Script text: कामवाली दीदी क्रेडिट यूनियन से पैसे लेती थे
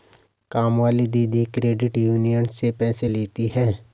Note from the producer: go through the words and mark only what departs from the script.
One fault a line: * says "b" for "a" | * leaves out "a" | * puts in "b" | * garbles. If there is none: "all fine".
* says "हैं" for "थे"